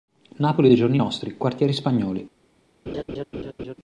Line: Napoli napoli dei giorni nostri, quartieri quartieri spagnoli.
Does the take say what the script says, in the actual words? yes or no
no